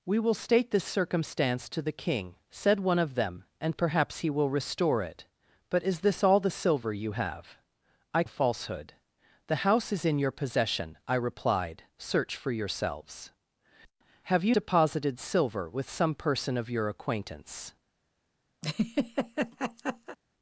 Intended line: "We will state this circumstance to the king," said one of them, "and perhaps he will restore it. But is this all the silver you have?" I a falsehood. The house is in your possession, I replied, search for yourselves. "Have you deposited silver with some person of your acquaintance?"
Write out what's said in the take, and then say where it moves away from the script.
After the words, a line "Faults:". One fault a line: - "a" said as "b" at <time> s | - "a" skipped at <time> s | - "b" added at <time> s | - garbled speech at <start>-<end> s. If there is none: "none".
"We will state this circumstance to the king," said one of them, "and perhaps he will restore it. But is this all the silver you have?" I a falsehood. The house is in your possession, I replied, search for yourselves. "Have you deposited silver with some person of your acquaintance?"
Faults:
none